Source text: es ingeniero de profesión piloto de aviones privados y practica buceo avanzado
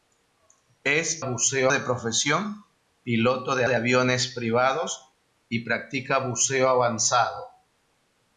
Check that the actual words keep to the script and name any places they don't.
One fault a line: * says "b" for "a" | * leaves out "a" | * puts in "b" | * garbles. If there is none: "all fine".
* says "buceo" for "ingeniero"
* puts in "de"